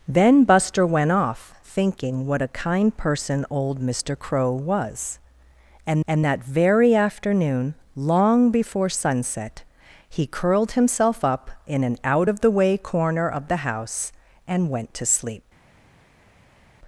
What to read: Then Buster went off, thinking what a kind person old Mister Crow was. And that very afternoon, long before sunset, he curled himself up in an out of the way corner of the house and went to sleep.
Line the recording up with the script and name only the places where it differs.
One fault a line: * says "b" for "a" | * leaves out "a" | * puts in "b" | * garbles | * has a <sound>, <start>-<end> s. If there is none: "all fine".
* puts in "and"